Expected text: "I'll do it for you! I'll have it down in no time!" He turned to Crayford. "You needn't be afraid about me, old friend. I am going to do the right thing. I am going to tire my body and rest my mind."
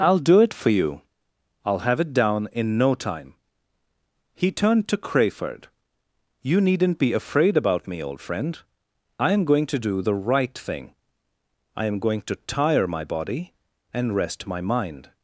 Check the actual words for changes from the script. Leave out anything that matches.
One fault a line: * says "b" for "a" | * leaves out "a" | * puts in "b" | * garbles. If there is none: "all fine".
all fine